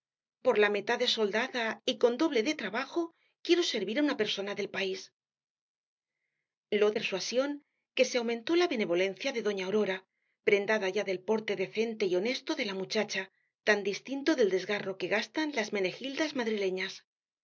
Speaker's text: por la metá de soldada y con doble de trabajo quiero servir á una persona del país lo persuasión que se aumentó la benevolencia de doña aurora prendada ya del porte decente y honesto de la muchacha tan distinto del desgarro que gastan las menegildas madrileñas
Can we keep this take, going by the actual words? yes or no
yes